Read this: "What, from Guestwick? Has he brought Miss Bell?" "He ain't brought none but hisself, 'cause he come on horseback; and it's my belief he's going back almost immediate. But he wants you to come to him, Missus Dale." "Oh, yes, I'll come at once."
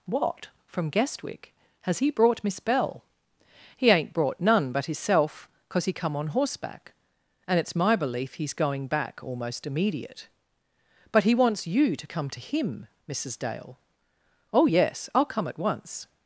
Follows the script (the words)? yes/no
yes